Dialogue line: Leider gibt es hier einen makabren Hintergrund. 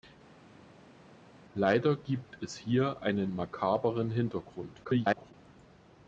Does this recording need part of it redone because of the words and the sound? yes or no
yes